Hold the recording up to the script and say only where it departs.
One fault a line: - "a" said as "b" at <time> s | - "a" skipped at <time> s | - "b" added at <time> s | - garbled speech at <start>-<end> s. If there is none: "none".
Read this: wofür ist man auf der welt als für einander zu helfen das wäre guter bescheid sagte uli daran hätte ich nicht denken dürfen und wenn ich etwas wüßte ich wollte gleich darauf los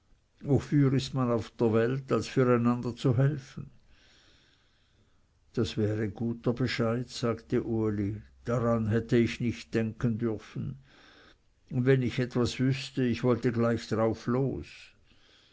none